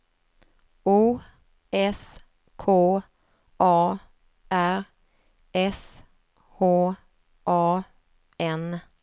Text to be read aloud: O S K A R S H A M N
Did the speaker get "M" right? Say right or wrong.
wrong